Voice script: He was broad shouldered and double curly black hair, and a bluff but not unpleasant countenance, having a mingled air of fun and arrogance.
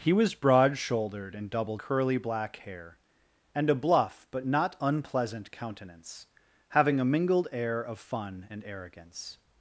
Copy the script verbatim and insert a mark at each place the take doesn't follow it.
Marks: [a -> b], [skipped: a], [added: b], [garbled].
He was broad shouldered and double curly black hair, and a bluff but not unpleasant countenance, having a mingled air of fun and arrogance.